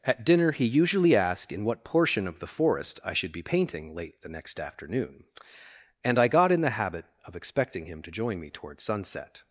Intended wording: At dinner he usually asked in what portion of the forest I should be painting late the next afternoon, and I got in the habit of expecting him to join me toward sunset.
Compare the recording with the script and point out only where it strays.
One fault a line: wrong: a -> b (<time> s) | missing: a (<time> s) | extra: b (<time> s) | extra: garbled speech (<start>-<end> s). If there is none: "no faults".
no faults